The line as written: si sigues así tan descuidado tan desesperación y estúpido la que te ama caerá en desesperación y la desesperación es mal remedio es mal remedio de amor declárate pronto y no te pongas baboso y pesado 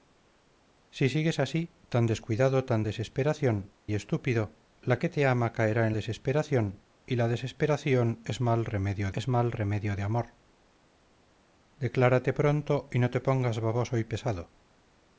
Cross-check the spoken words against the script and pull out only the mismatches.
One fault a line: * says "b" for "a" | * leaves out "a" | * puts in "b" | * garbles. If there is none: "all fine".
all fine